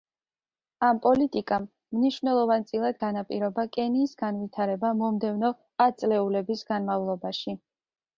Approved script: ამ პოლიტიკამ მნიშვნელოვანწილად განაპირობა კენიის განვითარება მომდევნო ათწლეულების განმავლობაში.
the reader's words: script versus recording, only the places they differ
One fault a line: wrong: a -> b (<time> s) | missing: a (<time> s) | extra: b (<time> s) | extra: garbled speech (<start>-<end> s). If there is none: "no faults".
no faults